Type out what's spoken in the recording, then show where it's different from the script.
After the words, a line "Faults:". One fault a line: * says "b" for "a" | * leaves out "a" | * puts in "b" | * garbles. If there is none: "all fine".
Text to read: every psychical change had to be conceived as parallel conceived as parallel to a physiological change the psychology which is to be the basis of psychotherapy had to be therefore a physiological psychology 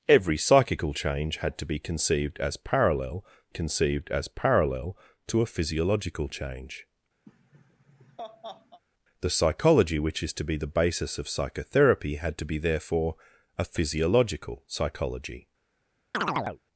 every psychical change had to be conceived as parallel conceived as parallel to a physiological change the psychology which is to be the basis of psychotherapy had to be therefore a physiological psychology
Faults:
all fine